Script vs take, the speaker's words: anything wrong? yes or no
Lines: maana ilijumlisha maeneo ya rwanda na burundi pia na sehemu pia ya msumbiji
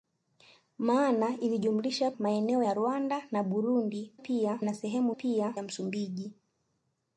no